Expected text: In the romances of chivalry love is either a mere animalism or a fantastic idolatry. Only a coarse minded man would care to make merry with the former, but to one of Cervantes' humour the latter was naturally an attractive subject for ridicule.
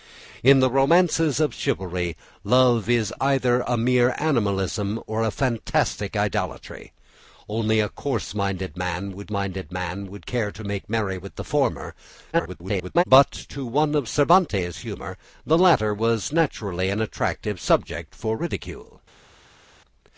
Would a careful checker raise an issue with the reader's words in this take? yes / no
yes